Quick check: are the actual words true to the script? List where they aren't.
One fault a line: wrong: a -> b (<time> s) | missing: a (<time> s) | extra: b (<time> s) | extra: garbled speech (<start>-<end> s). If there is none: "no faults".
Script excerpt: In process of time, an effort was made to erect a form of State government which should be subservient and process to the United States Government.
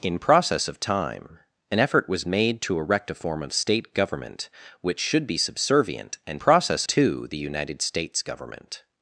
no faults